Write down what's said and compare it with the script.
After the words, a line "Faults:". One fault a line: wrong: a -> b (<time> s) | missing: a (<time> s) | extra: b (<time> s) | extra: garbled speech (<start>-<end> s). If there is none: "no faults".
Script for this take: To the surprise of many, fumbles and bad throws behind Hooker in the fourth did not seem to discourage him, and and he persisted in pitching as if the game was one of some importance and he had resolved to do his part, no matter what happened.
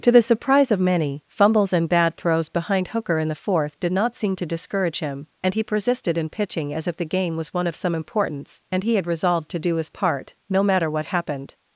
To the surprise of many, fumbles and bad throws behind Hooker in the fourth did not seem to discourage him, and he persisted in pitching as if the game was one of some importance and he had resolved to do his part, no matter what happened.
Faults:
missing: and (5.5 s)